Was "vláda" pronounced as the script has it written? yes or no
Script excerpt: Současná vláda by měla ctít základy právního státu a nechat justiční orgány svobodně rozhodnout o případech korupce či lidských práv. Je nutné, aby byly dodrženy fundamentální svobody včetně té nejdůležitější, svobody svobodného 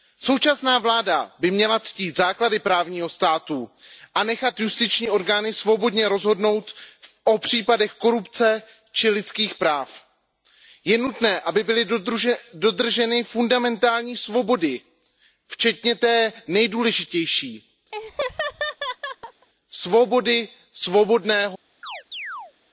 yes